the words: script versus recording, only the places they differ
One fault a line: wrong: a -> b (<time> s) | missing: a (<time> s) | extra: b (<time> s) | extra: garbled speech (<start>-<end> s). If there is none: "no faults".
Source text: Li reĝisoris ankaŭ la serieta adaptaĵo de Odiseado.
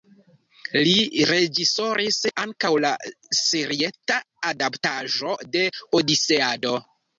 no faults